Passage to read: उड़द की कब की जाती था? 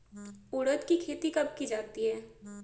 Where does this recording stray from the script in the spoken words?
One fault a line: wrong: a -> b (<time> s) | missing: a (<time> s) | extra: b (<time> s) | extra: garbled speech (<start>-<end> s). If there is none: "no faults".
extra: खेती (1.0 s)
wrong: था -> है (2.0 s)